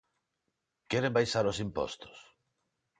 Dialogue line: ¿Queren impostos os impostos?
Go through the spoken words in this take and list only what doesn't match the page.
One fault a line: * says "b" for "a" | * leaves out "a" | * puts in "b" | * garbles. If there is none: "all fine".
* says "baixar" for "impostos"